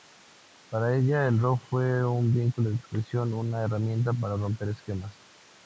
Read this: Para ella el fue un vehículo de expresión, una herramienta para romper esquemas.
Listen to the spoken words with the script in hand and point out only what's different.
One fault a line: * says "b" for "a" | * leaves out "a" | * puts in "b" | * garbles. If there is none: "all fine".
* puts in "rock"